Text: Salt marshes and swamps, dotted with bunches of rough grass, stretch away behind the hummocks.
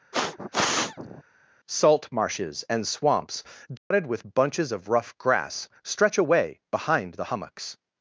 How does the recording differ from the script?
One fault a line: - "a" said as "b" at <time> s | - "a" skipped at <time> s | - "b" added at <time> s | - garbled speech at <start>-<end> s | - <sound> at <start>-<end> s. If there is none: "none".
- sniff at 0.1-1.2 s
- dropout at 3.8-3.9 s